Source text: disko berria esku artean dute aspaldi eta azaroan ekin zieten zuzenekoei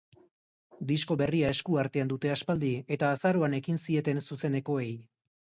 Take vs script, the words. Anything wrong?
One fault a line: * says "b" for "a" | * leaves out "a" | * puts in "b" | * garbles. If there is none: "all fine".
all fine